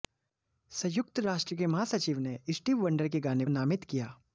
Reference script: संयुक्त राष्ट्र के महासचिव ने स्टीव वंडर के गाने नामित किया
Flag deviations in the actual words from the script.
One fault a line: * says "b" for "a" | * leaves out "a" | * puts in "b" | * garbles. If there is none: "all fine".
all fine